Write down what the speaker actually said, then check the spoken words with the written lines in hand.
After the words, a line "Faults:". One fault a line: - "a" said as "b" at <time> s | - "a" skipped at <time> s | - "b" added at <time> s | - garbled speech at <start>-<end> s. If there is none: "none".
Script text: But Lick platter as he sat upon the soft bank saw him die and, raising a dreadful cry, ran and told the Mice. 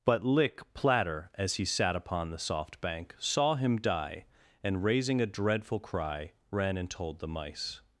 But Lick platter as he sat upon the soft bank saw him die and, raising a dreadful cry, ran and told the Mice.
Faults:
none